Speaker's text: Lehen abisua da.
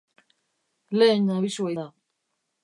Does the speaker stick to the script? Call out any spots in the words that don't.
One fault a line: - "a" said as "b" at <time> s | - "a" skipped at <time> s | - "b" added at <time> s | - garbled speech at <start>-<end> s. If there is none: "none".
none